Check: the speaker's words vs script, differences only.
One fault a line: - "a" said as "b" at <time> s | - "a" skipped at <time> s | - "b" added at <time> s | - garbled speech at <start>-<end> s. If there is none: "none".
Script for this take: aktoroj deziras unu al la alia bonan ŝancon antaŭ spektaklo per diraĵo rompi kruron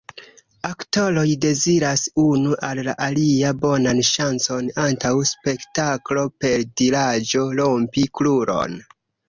none